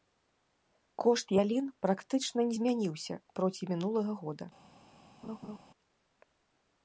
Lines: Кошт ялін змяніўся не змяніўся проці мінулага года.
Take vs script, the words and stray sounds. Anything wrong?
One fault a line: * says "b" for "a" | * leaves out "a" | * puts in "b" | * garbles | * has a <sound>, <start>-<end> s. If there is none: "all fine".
* says "практычна" for "змяніўся"
* has a laugh, 5.2-5.6 s